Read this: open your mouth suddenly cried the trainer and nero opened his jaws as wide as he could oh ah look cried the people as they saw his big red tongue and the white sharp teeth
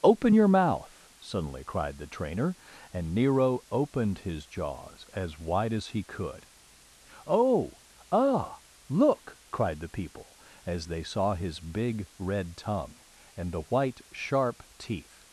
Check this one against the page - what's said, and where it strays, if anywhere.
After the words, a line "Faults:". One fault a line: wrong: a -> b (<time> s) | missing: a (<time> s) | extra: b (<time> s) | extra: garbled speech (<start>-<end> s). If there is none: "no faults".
open your mouth suddenly cried the trainer and nero opened his jaws as wide as he could oh ah look cried the people as they saw his big red tongue and the white sharp teeth
Faults:
no faults